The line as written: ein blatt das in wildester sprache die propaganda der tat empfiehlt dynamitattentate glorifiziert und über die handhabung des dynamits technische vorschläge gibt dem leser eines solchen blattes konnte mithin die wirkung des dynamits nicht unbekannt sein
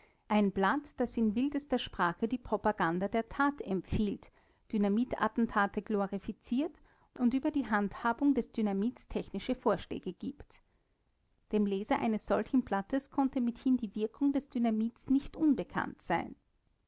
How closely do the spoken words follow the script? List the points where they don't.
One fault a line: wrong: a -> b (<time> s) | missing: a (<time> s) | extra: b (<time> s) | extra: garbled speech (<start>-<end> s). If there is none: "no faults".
no faults